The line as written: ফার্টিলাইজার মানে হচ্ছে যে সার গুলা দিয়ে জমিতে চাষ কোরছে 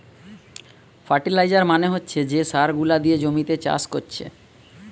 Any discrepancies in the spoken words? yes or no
no